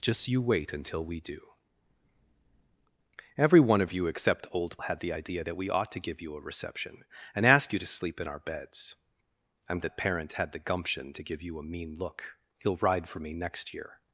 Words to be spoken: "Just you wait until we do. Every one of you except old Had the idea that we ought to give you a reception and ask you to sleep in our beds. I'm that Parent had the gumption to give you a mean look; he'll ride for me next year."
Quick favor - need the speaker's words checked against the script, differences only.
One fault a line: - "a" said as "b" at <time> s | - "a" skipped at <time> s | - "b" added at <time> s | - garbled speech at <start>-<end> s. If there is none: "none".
none